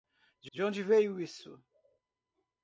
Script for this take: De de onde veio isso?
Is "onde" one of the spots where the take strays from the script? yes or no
no